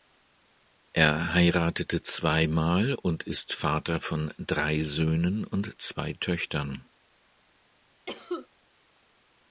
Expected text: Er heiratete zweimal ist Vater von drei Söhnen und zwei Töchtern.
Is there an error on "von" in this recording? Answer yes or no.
no